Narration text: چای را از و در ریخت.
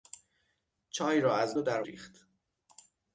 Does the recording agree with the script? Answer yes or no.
yes